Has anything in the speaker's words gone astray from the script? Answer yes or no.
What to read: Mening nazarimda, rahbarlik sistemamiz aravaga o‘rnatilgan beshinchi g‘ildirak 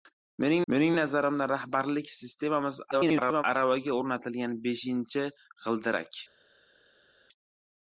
yes